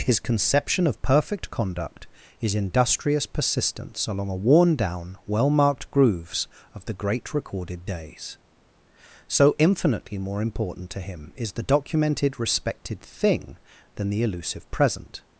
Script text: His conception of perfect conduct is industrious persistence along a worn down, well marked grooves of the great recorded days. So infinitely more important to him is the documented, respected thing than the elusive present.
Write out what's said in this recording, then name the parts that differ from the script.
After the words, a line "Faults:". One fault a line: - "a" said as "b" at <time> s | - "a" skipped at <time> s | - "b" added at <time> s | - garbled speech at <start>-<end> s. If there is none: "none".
His conception of perfect conduct is industrious persistence along a worn down, well marked grooves of the great recorded days. So infinitely more important to him is the documented, respected thing than the elusive present.
Faults:
none